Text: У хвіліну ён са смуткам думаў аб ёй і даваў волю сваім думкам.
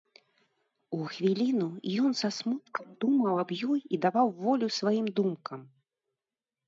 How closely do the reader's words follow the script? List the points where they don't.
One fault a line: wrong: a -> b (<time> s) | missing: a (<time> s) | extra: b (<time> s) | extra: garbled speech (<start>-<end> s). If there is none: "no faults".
no faults